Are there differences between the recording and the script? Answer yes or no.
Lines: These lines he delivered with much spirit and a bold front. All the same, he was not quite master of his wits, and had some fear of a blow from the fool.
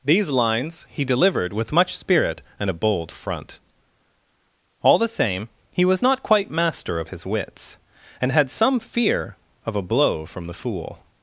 no